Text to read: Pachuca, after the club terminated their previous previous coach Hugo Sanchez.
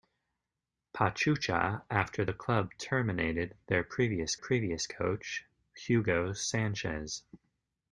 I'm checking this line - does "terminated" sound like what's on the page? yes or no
yes